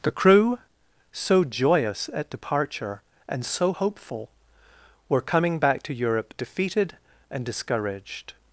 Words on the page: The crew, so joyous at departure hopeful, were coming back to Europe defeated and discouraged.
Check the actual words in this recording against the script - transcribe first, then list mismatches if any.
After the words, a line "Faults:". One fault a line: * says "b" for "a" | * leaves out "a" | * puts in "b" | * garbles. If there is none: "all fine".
The crew, so joyous at departure and so hopeful, were coming back to Europe defeated and discouraged.
Faults:
* puts in "and so"